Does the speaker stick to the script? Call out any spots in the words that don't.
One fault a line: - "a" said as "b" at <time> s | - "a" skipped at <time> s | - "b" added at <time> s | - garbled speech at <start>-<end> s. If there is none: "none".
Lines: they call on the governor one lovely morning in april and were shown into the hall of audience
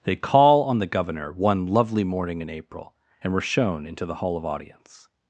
none